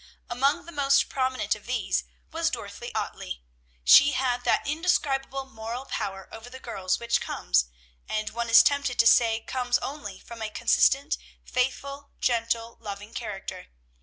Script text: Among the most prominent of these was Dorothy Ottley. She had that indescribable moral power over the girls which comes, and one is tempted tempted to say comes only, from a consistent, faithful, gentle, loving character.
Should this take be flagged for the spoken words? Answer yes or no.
yes